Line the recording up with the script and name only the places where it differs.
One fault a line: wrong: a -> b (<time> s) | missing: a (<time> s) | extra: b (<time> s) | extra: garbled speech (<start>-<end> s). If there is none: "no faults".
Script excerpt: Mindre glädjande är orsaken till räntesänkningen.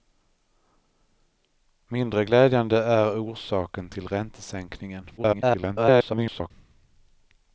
extra: garbled speech (5.2-6.5 s)